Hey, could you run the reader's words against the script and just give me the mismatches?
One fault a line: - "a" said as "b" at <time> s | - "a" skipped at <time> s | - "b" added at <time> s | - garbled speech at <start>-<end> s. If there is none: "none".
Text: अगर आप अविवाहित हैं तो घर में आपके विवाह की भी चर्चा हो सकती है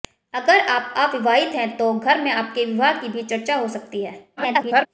- garbled speech at 4.4-4.9 s